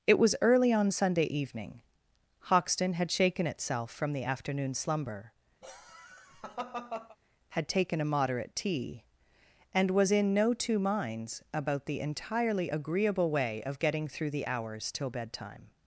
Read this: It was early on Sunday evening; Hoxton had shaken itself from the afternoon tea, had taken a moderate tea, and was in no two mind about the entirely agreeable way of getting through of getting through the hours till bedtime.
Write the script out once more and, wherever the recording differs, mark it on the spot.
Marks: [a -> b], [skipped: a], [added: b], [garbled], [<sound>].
It was early on Sunday evening; Hoxton had shaken itself from the afternoon [tea, -> slumber] [laugh] had taken a moderate tea, and was in no two [mind -> minds] about the entirely agreeable way of getting through [skipped: of getting through] the hours till bedtime.